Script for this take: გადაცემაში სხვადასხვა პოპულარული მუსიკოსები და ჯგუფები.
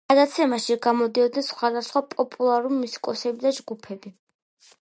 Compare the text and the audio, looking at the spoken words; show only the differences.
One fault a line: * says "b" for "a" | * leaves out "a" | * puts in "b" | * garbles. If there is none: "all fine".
* puts in "გამოდიოდნენ"